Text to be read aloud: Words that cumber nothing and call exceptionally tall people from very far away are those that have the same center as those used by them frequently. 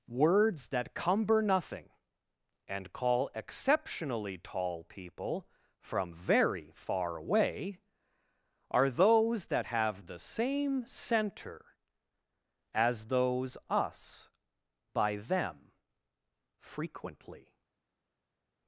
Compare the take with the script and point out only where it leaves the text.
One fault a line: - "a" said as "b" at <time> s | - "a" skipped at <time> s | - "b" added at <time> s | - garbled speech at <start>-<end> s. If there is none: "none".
- "used" said as "us" at 13.7 s